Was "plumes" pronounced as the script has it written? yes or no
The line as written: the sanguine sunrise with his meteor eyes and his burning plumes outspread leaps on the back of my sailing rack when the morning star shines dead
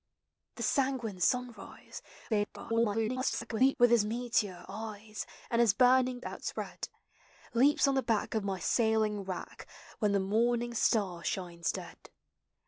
no